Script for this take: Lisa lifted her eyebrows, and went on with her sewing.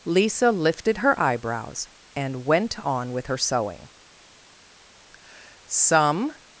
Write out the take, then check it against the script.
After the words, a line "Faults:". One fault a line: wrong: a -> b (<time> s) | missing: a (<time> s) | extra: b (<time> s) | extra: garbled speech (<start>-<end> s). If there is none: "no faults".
Lisa lifted her eyebrows, and went on with her sewing. Some
Faults:
extra: Some (5.6 s)